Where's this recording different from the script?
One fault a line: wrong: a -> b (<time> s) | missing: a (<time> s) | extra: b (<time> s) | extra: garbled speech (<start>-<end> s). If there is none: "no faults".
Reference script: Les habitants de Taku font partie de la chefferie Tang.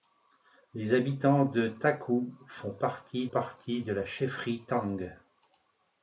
extra: partie (3.3 s)